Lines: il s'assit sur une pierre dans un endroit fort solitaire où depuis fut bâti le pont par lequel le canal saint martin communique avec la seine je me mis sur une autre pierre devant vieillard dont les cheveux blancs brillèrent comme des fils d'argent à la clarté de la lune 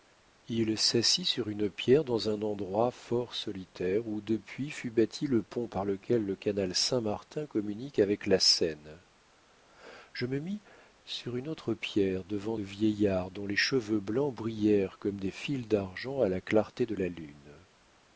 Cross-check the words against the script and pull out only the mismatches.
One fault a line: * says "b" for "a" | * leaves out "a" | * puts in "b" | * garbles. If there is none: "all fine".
all fine